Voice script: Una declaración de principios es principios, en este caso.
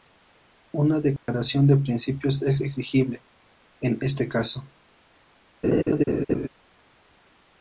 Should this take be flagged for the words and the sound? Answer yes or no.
yes